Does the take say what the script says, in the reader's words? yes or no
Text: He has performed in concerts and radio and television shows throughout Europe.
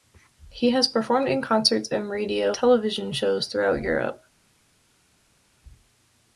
no